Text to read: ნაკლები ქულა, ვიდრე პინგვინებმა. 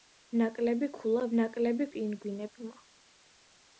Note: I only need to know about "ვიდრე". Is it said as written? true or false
false